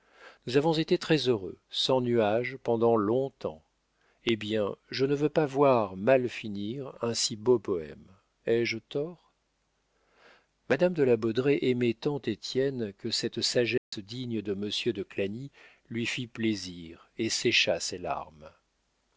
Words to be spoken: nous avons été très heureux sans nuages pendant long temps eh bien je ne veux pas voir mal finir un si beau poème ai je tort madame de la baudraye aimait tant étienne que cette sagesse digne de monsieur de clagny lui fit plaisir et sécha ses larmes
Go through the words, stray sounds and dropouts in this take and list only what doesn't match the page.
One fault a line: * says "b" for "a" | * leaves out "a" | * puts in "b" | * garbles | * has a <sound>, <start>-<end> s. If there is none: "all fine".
* has a dropout, 13.8-13.9 s